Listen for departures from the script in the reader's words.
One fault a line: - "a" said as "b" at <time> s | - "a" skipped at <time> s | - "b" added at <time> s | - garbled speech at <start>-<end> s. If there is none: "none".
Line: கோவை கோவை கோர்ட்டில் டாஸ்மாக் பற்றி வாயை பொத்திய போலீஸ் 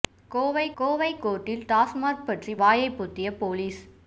none